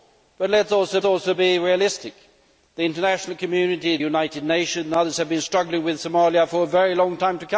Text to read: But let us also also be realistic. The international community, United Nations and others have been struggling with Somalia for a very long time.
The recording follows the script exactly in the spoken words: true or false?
true